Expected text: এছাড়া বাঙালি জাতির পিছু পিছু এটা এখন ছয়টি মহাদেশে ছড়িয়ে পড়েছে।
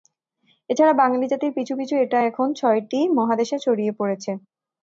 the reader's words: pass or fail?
pass